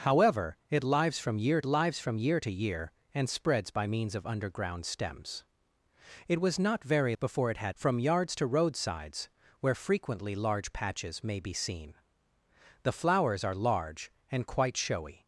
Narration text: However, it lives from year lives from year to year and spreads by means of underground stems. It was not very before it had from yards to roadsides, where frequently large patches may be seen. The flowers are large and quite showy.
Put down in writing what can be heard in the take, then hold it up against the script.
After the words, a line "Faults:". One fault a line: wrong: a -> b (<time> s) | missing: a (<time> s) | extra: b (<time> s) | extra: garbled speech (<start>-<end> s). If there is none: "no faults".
However, it lives from year lives from year to year and spreads by means of underground stems. It was not very before it had from yards to roadsides, where frequently large patches may be seen. The flowers are large and quite showy.
Faults:
no faults